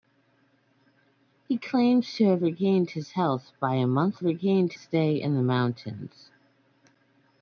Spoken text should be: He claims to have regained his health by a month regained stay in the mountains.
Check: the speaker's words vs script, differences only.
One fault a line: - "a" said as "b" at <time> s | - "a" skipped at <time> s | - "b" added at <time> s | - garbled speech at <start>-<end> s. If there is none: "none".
none